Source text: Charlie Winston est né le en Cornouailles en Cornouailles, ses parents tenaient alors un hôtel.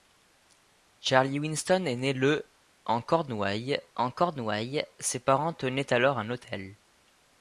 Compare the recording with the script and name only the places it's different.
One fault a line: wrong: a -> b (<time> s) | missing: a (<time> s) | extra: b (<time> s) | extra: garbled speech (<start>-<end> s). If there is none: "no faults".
no faults